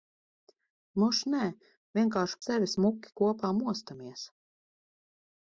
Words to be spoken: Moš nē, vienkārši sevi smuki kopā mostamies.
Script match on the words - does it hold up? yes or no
yes